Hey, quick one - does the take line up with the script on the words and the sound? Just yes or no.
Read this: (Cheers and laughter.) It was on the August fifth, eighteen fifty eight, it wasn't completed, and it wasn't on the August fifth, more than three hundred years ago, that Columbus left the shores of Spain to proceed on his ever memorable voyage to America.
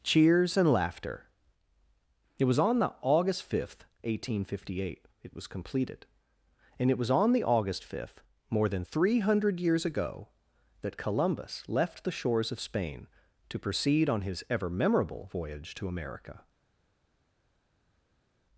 no